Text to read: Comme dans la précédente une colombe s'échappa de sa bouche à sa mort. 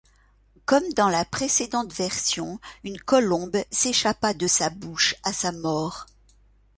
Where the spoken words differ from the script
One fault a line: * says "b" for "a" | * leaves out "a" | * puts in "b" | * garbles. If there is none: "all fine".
* puts in "version"